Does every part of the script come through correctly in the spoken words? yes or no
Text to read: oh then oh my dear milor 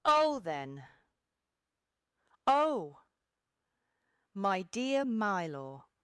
yes